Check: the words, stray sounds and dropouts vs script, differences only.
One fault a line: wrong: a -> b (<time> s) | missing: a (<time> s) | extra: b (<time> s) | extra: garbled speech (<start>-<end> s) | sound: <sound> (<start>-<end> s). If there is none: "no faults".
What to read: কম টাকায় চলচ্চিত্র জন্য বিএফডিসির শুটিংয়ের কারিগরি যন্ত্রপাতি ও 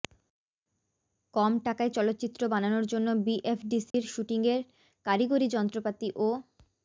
extra: বানানোর (2.5 s)
sound: dropout (3.9-3.9 s)